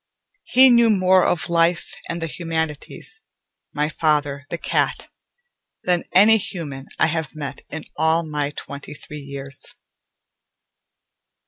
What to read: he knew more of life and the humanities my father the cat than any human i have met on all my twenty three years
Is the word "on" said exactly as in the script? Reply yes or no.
no